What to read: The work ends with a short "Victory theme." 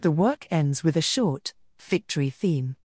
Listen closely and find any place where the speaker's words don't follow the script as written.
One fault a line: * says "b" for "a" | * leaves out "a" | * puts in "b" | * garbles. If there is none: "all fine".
all fine